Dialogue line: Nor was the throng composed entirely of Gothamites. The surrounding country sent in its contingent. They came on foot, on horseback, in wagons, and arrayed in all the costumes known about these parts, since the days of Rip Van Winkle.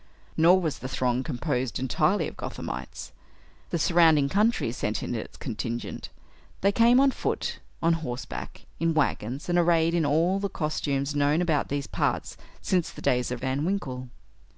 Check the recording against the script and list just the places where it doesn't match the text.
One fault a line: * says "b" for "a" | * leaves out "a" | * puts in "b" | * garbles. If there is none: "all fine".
* leaves out "Rip"